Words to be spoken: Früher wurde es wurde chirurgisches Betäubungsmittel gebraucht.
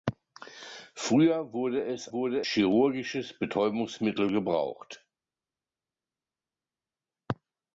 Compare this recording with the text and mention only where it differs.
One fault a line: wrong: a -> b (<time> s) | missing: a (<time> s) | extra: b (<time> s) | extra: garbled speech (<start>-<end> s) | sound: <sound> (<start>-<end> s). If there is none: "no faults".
no faults